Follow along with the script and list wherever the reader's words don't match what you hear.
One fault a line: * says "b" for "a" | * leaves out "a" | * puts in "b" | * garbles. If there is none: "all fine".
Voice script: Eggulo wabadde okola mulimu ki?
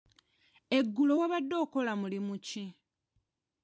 all fine